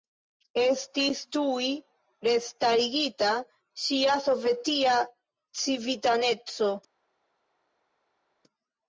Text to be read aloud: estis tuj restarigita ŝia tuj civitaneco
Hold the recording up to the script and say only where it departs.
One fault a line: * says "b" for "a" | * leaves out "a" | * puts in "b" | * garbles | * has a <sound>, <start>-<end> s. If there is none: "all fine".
* says "sovetia" for "tuj"